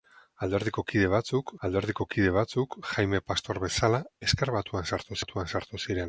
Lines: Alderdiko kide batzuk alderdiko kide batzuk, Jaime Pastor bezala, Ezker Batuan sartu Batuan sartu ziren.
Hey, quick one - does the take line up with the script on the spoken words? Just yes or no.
yes